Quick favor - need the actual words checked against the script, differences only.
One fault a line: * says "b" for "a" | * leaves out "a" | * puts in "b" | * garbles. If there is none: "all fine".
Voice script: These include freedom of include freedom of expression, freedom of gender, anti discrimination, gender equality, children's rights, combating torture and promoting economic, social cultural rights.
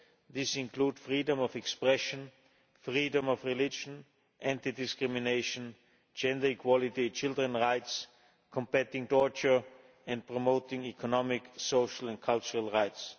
* leaves out "include freedom of"
* says "religion" for "gender"
* puts in "and"